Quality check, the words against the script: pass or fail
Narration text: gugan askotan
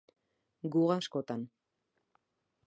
pass